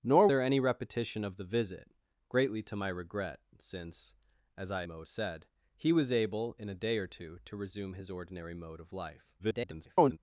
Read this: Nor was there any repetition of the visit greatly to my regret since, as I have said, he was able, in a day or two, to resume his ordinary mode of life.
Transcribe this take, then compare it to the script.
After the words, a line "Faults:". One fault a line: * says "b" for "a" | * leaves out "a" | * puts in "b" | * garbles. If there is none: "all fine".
Nor there any repetition of the visit greatly to my regret since, as I mode said, he was able, in a day or two, to resume his ordinary mode of life. [garbled]
Faults:
* leaves out "was"
* says "mode" for "have"
* garbles